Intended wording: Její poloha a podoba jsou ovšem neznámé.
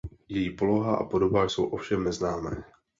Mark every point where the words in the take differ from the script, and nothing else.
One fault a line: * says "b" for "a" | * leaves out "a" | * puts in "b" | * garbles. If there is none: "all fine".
all fine